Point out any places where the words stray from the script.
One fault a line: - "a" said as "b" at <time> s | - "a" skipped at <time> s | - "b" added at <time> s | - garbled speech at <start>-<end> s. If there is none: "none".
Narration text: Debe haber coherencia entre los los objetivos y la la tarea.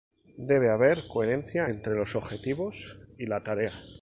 - "los" skipped at 2.1 s
- "la" skipped at 3.4 s